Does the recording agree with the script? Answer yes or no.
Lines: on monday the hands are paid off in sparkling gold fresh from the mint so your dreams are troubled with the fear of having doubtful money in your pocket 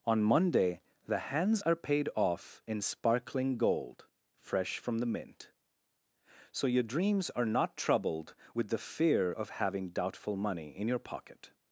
no